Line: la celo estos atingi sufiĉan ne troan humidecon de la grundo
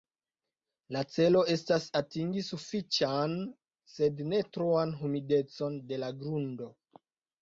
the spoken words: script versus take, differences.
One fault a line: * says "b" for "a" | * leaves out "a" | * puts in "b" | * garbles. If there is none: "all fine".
* says "estas" for "estos"
* puts in "sed"